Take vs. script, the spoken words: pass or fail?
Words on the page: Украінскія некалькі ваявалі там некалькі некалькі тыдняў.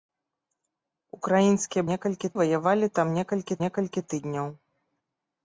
pass